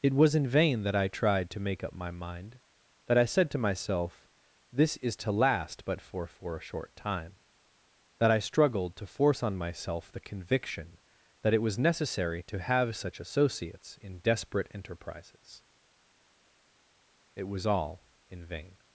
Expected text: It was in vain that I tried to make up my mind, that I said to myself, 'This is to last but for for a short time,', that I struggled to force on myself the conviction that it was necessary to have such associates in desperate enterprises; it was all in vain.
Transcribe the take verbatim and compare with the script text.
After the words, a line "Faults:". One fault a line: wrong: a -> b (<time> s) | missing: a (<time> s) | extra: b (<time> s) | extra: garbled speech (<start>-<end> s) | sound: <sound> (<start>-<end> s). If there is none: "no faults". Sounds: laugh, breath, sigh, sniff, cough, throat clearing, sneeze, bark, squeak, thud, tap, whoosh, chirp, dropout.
It was in vain that I tried to make up my mind, that I said to myself, 'This is to last but for for a short time,', that I struggled to force on myself the conviction that it was necessary to have such associates in desperate enterprises; it was all in vain.
Faults:
no faults